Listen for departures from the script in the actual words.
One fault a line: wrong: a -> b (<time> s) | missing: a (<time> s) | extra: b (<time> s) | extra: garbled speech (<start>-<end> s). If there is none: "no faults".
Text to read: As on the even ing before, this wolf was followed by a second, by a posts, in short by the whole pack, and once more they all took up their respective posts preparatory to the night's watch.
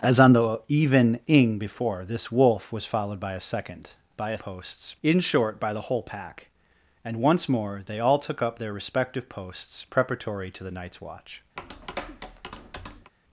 no faults